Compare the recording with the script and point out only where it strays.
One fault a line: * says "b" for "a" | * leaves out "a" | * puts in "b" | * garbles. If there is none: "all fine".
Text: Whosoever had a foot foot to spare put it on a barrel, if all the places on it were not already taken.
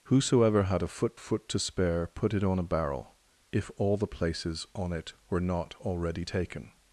all fine